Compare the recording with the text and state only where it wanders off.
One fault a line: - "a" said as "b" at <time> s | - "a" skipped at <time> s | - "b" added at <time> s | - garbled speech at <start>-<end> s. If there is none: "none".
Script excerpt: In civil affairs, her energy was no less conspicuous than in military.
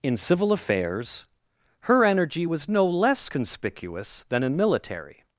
none